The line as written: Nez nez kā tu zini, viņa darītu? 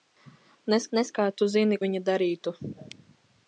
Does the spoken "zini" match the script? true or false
true